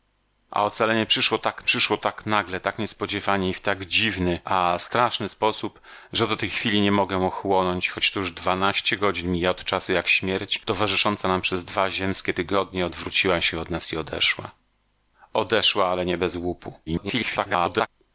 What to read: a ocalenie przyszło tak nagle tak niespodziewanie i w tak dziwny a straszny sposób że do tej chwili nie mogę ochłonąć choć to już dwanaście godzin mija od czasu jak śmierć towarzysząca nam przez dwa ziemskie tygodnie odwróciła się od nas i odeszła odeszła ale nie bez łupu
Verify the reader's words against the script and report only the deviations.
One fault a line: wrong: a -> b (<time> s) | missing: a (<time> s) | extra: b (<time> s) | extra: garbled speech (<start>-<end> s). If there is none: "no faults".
extra: przyszło tak (1.6 s)
extra: garbled speech (16.9-17.9 s)